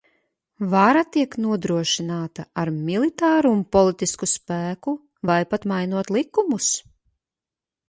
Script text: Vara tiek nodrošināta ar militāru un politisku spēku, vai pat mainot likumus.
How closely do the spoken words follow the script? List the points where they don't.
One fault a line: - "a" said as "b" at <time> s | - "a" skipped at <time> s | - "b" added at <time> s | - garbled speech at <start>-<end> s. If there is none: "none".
none